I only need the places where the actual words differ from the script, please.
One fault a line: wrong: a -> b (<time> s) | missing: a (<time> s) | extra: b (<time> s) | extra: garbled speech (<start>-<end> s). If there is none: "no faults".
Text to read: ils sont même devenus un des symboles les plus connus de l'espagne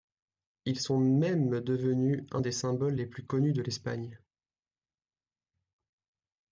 no faults